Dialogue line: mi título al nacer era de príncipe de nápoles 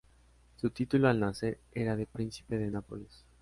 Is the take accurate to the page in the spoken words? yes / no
no